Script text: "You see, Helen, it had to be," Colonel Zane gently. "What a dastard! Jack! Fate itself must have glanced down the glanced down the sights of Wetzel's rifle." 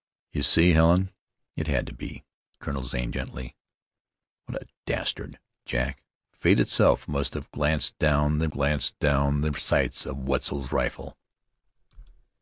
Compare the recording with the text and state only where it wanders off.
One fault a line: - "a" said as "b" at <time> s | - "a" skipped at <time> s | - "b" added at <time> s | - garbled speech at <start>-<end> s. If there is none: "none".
none